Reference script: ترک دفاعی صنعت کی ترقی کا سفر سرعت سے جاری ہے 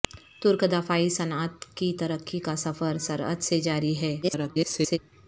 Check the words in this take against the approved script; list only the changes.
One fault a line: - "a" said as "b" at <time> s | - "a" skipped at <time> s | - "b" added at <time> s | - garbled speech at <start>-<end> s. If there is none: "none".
- garbled speech at 4.2-5.0 s